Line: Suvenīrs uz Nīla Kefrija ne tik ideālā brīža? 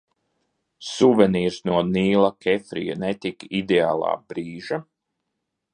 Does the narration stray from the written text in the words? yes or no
yes